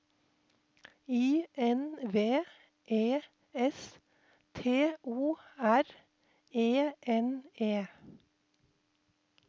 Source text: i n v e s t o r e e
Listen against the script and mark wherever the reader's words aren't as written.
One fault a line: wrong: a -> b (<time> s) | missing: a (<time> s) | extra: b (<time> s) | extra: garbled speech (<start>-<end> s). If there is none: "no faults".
extra: n (7.0 s)